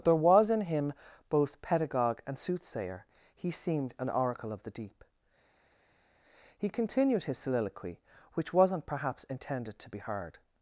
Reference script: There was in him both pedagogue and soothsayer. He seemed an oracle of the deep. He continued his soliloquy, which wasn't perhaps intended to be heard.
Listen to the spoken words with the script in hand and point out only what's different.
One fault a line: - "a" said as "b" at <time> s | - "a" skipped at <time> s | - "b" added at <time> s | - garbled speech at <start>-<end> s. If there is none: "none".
none